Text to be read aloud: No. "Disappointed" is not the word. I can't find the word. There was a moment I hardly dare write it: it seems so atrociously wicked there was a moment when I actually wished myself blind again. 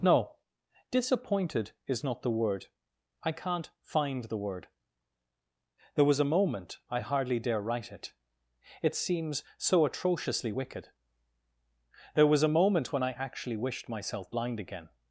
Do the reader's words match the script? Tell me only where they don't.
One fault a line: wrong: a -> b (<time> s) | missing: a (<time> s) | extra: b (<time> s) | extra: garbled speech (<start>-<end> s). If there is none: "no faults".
no faults